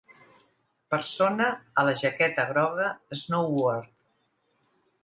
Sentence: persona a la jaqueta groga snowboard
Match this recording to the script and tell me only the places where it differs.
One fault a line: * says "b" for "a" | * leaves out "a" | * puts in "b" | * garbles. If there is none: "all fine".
all fine